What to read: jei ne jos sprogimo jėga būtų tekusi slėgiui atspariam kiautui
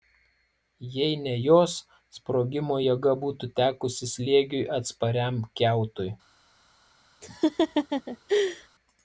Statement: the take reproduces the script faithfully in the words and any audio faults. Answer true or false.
false